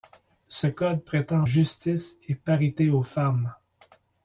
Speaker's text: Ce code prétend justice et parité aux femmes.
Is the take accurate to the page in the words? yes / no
yes